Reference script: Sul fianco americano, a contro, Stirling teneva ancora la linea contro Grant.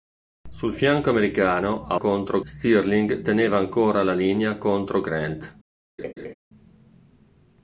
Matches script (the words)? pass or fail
pass